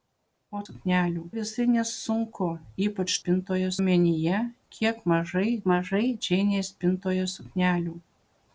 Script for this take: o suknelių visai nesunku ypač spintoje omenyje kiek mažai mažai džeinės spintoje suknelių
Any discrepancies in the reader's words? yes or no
no